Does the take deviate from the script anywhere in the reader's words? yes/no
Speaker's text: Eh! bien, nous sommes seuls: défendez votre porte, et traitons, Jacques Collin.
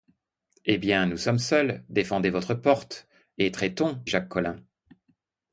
no